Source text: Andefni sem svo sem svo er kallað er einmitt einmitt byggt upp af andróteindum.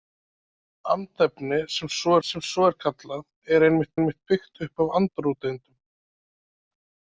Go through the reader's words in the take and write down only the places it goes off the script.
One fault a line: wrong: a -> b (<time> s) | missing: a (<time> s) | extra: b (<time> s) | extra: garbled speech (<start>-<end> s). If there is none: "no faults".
no faults